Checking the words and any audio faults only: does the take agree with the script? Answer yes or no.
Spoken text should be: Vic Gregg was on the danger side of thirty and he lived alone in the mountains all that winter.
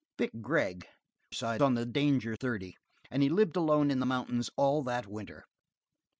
no